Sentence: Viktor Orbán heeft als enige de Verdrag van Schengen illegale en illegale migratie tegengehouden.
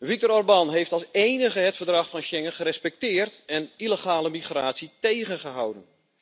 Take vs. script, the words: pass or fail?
fail